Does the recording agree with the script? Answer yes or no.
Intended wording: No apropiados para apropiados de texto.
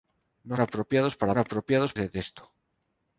yes